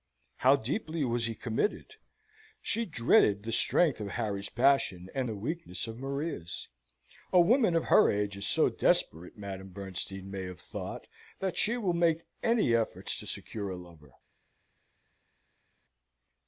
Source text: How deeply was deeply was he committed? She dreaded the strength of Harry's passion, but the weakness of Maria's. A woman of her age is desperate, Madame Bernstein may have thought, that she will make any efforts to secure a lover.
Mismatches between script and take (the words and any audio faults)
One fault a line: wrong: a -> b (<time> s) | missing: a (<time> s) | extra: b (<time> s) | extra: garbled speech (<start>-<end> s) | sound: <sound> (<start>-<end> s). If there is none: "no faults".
missing: deeply was (1.3 s)
wrong: but -> and (5.1 s)
extra: so (8.5 s)